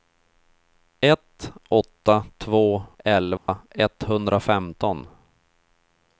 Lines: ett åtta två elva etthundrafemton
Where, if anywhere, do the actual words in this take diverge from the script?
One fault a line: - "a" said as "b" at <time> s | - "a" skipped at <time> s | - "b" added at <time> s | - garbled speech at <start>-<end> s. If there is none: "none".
none